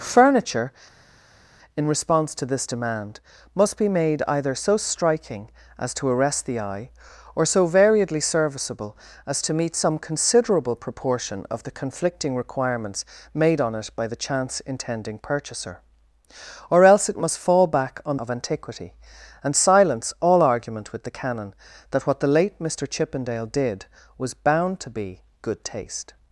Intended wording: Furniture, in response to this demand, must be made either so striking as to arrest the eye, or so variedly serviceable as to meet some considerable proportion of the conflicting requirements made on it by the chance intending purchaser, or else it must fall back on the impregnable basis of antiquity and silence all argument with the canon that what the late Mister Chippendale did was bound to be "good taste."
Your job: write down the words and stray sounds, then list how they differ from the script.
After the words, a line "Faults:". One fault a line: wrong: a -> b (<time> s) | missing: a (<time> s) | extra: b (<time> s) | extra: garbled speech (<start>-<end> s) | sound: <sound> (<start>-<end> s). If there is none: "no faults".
Furniture, in response to this demand, must be made either so striking as to arrest the eye, or so variedly serviceable as to meet some considerable proportion of the conflicting requirements made on it by the chance intending purchaser, or else it must fall back on of antiquity and silence all argument with the canon that what the late Mister Chippendale did was bound to be "good taste."
Faults:
missing: the impregnable basis (18.2 s)